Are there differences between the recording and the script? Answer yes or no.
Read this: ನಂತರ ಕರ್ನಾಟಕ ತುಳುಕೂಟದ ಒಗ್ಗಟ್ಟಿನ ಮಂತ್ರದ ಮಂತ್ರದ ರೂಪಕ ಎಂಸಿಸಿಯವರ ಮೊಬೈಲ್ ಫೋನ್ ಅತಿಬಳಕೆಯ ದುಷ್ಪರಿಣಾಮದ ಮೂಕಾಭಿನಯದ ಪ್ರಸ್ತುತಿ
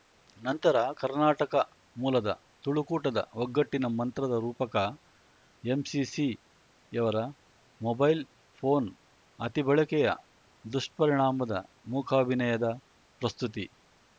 yes